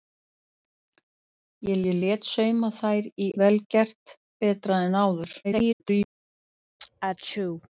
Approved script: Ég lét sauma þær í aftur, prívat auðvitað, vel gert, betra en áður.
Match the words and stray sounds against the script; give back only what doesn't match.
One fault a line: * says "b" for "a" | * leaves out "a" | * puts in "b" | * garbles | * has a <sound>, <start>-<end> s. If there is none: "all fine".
* puts in "ég"
* leaves out "aftur prívat auðvitað"
* garbles
* has a sneeze, 6.8-7.7 s